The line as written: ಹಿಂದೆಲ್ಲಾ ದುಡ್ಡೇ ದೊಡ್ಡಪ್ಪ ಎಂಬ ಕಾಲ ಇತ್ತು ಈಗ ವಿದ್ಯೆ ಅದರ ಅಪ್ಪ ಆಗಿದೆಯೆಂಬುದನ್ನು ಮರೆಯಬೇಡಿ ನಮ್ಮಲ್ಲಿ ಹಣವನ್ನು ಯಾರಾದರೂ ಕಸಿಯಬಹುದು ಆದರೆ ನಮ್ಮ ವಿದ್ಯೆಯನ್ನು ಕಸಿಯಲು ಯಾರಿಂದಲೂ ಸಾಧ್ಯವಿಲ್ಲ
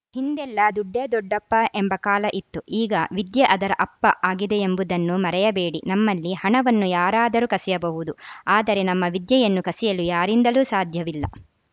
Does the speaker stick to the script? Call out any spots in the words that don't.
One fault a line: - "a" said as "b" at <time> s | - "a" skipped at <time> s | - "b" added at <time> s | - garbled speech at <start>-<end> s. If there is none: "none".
none